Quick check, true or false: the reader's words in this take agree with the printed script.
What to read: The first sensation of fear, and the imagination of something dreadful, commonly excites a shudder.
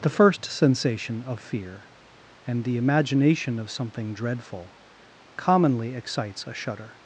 true